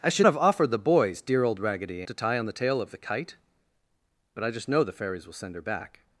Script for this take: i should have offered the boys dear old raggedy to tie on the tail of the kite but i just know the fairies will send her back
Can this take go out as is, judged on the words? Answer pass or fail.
pass